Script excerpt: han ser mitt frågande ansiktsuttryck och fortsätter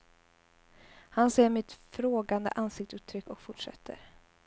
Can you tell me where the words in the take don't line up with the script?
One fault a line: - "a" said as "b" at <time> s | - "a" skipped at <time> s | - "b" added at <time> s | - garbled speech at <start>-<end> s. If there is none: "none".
none